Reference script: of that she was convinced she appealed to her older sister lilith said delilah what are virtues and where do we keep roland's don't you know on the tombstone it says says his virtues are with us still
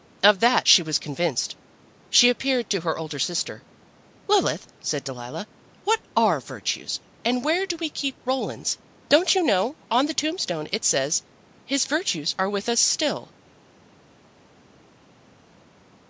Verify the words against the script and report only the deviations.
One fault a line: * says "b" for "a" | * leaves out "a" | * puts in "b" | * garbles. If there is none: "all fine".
* leaves out "says"